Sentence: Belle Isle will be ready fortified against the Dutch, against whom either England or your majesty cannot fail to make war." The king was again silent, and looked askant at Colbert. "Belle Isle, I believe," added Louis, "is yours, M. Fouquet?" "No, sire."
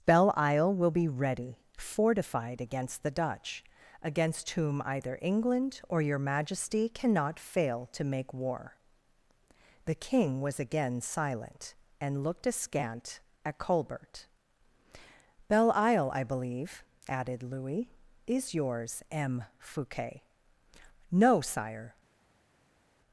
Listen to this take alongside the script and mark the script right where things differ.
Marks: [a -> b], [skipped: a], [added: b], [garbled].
Belle Isle will be ready fortified against the Dutch, against whom either England or your majesty cannot fail to make war." The king was again silent, and looked askant at Colbert. "Belle Isle, I believe," added Louis, "is yours, M. Fouquet?" "No, sire."